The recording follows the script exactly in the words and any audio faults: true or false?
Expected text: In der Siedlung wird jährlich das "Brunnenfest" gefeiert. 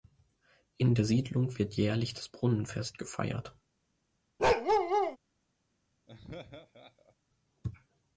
false